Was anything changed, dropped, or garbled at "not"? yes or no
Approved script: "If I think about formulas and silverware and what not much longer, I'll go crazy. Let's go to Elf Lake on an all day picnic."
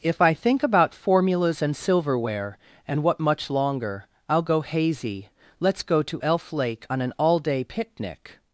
yes